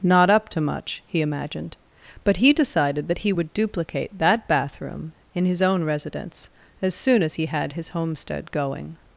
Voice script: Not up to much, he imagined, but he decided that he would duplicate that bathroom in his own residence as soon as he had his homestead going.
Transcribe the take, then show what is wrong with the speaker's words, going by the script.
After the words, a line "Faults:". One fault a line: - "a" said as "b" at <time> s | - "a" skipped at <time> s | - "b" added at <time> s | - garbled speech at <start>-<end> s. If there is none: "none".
Not up to much, he imagined, but he decided that he would duplicate that bathroom in his own residence as soon as he had his homestead going.
Faults:
none